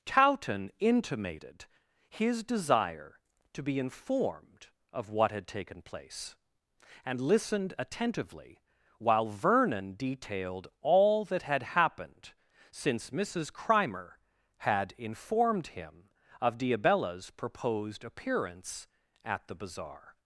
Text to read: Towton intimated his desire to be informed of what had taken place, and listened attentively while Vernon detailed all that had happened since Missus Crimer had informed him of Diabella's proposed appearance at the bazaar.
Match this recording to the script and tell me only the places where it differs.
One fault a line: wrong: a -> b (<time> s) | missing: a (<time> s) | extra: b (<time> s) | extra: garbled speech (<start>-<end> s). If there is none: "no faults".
no faults